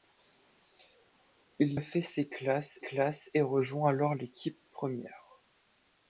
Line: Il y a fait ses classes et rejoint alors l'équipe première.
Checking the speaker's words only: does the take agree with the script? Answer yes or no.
no